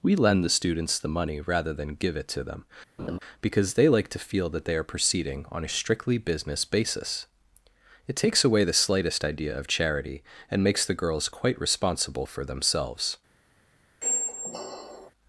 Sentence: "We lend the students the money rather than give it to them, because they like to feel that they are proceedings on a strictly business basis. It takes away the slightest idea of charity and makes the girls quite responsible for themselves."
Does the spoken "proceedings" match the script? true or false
false